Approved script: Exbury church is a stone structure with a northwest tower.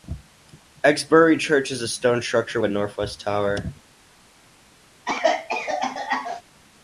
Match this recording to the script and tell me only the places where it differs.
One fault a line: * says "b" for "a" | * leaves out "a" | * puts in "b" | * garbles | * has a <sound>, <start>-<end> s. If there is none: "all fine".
* leaves out "with"
* has a cough, 5.1-6.4 s